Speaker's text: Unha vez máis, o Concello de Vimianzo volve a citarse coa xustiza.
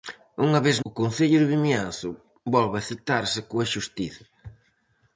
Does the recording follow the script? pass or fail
fail